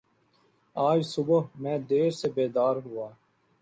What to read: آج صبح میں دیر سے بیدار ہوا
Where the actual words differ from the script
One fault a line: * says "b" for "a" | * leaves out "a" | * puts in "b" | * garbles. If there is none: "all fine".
all fine